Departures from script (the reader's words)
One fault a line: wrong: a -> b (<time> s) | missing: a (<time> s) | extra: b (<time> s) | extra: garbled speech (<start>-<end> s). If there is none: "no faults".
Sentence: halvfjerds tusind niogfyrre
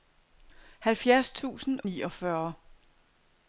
no faults